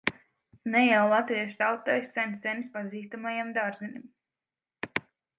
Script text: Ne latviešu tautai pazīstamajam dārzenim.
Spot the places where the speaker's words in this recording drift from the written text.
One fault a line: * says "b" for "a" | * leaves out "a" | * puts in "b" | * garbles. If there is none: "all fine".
* puts in "jau"
* puts in "sen senis"